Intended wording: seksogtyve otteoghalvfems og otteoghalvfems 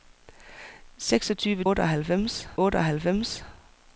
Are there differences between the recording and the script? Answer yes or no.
no